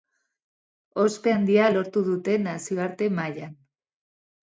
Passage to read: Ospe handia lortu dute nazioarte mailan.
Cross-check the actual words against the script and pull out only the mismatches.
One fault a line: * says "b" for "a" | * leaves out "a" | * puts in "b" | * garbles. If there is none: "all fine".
all fine